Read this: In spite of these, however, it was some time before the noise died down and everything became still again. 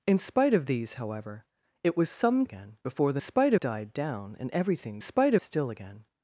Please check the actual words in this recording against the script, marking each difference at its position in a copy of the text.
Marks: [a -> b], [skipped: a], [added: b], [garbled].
In spite of these, however, it was some [time -> again] before the [noise -> spite] died down and everything [became -> spite] still again.